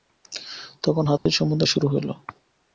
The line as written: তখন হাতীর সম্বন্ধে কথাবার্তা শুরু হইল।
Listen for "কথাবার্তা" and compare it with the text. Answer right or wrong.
wrong